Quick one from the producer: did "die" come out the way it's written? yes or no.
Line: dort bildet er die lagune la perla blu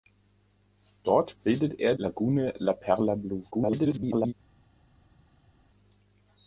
no